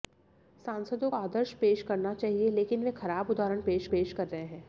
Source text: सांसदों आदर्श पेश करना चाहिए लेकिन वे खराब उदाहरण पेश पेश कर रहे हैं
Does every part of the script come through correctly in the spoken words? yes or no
yes